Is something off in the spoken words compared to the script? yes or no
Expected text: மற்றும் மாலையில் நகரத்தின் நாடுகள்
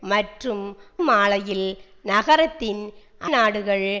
no